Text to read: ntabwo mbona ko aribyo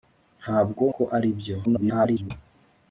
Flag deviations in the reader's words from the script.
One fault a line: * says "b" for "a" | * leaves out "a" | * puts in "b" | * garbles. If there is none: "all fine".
* leaves out "mbona"
* garbles